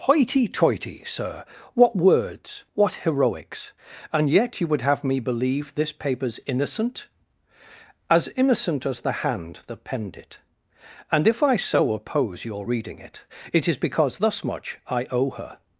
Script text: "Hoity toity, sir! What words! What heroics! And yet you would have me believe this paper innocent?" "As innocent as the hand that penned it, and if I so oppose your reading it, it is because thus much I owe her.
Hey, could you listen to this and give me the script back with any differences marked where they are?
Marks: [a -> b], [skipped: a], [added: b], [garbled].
"Hoity toity, sir! What words! What heroics! And yet you would have me believe this [paper -> papers] innocent?" "As innocent as the hand that penned it, and if I so oppose your reading it, it is because thus much I owe her.